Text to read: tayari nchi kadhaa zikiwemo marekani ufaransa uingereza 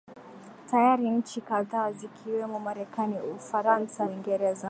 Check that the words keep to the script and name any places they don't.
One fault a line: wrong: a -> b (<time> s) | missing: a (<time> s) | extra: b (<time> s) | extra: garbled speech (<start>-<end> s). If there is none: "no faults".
no faults